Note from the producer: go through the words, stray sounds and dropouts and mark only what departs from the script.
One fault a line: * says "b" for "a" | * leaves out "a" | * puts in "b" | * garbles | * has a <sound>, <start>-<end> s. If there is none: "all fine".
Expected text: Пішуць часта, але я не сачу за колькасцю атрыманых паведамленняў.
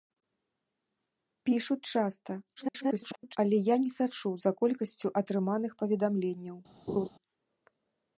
* garbles
* has a laugh, 6.9-7.1 s